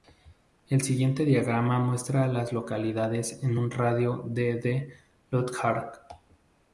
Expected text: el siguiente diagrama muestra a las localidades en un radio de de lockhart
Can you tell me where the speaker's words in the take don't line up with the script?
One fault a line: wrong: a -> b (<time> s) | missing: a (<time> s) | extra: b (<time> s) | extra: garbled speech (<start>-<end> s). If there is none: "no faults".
no faults